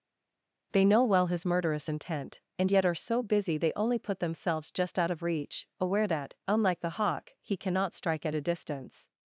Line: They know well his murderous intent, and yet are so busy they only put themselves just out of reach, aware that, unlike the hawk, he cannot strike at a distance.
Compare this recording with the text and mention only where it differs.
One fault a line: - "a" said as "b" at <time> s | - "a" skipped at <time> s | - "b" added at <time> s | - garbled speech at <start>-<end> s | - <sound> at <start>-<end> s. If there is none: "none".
none